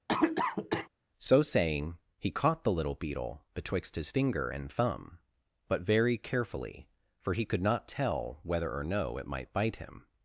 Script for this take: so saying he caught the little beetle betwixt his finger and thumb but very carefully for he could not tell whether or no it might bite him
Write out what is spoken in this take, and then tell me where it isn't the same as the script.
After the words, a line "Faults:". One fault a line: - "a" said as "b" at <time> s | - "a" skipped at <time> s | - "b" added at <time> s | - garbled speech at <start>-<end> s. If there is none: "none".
so saying he caught the little beetle betwixt his finger and thumb but very carefully for he could not tell whether or no it might bite him
Faults:
none